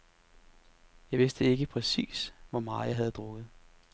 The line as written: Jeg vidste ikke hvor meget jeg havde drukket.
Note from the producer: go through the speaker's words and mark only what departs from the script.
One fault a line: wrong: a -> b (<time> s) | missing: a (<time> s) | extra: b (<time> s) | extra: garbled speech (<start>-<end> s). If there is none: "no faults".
extra: præcis (1.7 s)